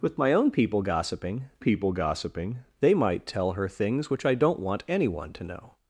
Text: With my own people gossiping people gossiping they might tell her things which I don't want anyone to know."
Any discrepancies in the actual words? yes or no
no